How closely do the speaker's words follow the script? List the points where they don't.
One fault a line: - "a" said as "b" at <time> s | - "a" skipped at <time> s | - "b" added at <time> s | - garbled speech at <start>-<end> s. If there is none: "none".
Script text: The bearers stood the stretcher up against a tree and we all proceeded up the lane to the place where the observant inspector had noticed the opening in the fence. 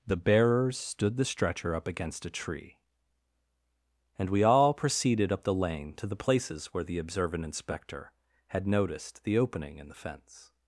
- "place" said as "places" at 6.2 s